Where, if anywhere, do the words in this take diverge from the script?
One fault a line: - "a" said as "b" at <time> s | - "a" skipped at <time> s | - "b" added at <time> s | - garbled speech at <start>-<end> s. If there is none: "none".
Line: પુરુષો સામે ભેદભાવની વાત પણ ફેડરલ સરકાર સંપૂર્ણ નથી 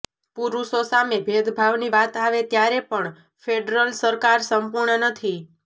- "આવે ત્યારે" added at 2.2 s